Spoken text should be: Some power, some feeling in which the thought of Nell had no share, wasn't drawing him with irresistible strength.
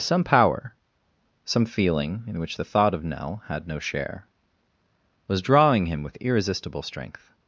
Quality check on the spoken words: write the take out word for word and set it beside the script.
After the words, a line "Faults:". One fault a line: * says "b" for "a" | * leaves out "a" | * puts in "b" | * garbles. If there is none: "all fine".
Some power, some feeling in which the thought of Nell had no share, was drawing him with irresistible strength.
Faults:
* says "was" for "wasn't"